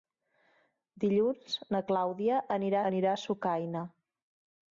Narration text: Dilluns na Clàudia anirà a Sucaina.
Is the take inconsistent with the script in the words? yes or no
yes